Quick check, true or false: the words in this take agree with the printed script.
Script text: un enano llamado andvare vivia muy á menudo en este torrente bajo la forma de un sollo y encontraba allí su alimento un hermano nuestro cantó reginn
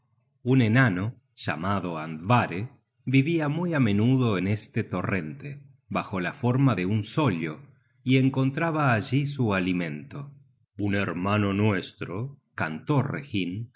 true